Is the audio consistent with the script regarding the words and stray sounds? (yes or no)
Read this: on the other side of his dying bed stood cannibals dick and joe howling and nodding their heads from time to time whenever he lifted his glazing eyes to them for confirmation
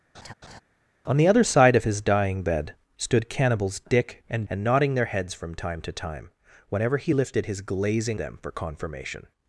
no